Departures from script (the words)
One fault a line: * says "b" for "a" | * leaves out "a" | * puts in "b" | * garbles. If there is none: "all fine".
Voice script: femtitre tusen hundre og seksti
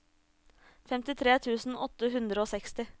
* puts in "åtte"